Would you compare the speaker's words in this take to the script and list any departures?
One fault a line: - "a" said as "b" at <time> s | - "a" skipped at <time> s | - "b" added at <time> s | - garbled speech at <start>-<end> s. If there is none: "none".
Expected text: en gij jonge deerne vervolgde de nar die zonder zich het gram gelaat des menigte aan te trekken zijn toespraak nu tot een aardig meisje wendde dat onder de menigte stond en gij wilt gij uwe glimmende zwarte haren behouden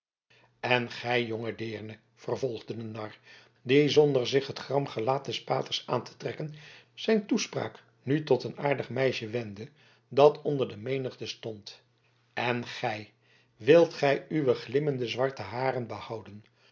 - "menigte" said as "paters" at 5.4 s